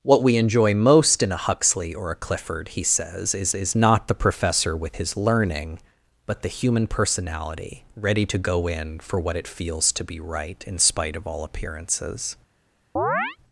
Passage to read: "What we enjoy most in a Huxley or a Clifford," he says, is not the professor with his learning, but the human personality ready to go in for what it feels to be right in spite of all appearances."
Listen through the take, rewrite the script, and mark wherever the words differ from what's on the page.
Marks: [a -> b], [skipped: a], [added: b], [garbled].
"What we enjoy most in a Huxley or a Clifford," he says, is [added: is] not the professor with his learning, but the human personality ready to go in for what it feels to be right in spite of all appearances."